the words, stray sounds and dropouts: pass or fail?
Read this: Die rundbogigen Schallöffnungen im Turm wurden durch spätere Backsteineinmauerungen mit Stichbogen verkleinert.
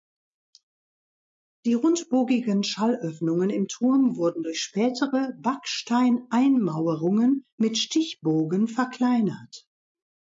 pass